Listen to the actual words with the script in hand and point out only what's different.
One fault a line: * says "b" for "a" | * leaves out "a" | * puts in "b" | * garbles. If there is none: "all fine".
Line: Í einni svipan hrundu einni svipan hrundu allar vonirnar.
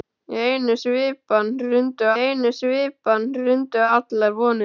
all fine